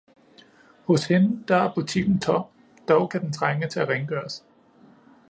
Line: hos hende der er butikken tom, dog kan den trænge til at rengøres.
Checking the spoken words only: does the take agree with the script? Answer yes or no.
yes